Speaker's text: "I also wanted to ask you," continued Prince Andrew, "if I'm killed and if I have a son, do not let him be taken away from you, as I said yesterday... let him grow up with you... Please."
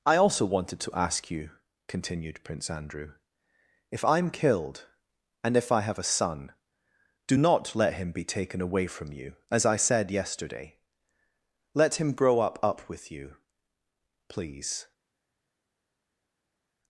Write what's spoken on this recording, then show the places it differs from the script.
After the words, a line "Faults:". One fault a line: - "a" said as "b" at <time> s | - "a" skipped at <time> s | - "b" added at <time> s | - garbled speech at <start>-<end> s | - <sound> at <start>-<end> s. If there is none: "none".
"I also wanted to ask you," continued Prince Andrew, "if I'm killed and if I have a son, do not let him be taken away from you, as I said yesterday... let him grow up up with you... Please."
Faults:
- "up" added at 12.6 s